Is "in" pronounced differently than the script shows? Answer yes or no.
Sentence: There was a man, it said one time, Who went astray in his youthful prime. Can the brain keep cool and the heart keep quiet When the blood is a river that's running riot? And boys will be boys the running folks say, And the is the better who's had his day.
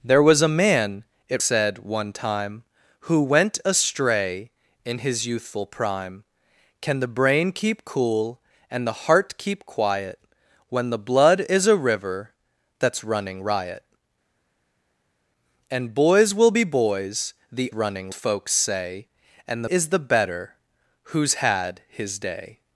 no